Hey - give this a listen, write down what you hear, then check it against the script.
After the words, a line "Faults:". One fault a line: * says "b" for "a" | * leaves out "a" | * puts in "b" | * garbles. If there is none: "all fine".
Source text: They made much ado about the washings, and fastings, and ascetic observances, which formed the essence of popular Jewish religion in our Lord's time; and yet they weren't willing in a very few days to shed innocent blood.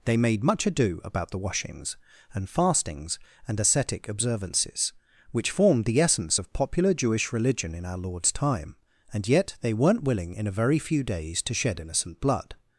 They made much ado about the washings, and fastings, and ascetic observances, which formed the essence of popular Jewish religion in our Lord's time; and yet they weren't willing in a very few days to shed innocent blood.
Faults:
all fine